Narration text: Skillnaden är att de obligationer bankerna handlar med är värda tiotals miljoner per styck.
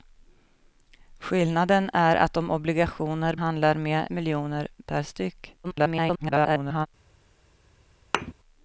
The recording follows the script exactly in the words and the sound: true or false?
false